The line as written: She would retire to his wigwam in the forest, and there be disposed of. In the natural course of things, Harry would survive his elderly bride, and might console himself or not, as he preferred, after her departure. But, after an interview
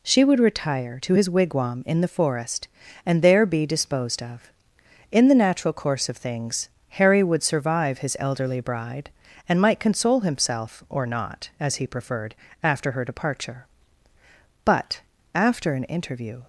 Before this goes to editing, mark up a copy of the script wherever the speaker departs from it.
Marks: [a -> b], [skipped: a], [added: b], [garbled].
She would retire to his wigwam in the forest, and there be disposed of. In the natural course of things, Harry would survive his elderly bride, and might console himself or not, as he preferred, after her departure. But, after an interview